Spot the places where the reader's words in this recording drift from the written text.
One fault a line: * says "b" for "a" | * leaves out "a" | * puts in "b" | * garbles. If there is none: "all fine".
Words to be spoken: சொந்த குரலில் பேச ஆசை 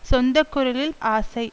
* leaves out "பேச"